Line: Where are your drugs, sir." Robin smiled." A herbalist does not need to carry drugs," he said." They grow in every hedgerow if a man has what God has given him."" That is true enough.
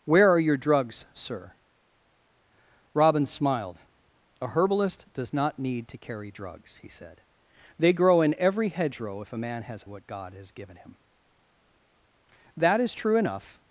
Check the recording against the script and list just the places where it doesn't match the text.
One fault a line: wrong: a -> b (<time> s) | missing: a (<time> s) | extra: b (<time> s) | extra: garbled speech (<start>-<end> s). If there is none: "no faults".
no faults